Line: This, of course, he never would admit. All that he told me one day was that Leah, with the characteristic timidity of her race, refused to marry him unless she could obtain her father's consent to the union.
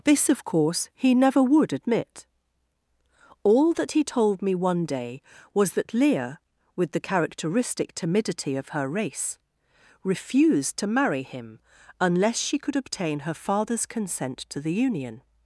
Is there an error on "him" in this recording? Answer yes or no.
no